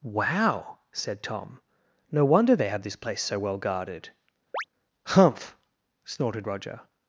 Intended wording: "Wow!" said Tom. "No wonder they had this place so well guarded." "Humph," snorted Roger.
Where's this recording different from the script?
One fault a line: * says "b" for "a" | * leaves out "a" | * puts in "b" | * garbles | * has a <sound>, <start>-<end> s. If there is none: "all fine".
* says "have" for "had"
* has a chirp, 4.5-4.6 s